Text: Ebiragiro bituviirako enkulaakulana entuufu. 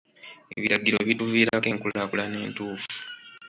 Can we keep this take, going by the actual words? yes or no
yes